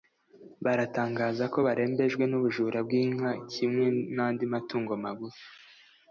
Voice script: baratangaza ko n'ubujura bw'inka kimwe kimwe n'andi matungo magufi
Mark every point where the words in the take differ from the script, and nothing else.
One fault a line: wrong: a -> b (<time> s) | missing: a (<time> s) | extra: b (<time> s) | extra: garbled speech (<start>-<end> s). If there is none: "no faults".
extra: barembejwe (1.7 s)
missing: kimwe (3.8 s)